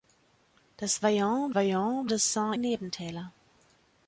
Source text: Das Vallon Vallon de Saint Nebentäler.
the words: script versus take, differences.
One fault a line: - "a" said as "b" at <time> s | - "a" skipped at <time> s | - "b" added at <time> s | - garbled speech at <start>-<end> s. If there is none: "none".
none